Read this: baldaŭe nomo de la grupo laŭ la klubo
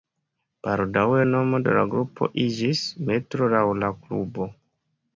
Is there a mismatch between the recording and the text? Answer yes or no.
yes